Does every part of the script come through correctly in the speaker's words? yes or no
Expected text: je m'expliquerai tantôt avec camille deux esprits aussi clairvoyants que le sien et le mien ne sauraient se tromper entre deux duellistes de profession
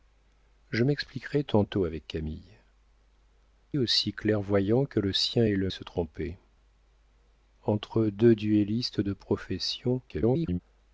no